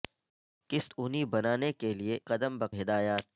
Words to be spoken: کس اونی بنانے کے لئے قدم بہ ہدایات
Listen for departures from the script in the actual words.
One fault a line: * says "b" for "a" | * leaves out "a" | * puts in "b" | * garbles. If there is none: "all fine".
all fine